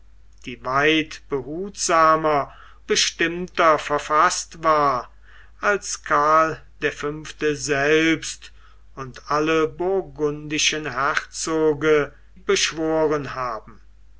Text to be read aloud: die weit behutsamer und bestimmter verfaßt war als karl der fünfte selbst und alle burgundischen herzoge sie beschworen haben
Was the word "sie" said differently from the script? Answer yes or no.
yes